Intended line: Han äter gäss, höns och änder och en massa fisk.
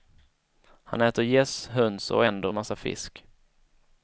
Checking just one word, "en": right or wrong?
wrong